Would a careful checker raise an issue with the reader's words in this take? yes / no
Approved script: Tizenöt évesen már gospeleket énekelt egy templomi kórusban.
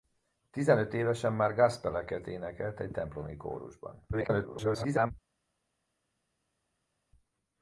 yes